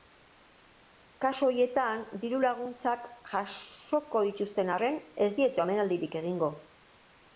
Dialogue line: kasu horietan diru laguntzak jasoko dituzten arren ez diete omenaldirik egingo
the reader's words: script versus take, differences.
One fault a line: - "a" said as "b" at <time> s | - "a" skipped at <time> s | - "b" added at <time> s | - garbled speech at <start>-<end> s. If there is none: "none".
none